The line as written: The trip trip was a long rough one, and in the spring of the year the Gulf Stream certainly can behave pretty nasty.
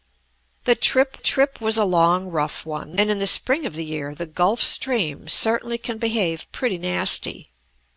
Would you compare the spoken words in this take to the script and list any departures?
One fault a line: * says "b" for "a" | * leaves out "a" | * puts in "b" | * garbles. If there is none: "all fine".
all fine